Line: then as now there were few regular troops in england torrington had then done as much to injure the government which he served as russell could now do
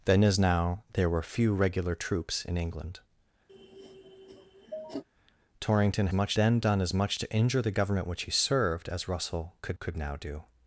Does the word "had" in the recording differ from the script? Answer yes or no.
yes